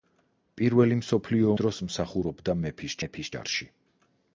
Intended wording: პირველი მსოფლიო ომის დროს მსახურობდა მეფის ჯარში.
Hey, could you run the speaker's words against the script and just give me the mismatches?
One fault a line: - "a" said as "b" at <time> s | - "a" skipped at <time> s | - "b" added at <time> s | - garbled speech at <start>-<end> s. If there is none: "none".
- "ომის" skipped at 1.5 s
- "მეფის" added at 3.0 s